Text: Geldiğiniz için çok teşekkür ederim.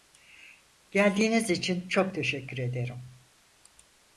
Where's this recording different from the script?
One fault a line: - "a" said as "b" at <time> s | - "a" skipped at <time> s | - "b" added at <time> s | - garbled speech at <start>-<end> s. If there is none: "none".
none